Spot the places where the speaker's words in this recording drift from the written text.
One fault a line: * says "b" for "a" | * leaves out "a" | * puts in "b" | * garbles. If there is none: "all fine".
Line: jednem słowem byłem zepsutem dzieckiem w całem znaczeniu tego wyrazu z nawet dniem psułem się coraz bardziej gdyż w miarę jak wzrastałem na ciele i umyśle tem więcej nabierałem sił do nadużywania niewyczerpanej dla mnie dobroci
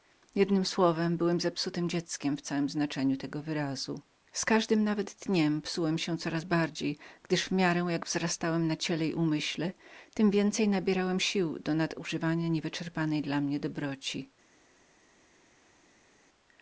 * puts in "każdym"